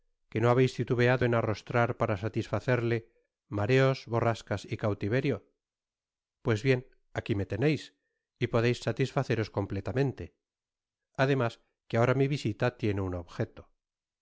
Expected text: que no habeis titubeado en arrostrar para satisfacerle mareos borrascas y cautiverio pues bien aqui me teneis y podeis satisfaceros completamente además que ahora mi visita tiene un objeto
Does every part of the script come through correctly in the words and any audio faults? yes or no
yes